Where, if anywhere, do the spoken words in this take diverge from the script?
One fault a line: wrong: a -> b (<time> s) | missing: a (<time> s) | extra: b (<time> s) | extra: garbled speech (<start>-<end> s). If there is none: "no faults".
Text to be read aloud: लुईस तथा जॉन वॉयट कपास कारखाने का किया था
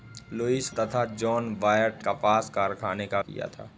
no faults